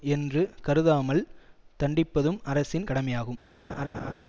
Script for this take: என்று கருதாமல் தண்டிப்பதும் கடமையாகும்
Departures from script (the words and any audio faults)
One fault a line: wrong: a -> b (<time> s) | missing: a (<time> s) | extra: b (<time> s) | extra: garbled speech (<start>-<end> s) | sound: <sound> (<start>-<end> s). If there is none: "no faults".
extra: அரசின் (2.4 s)
sound: laugh (3.7-4.1 s)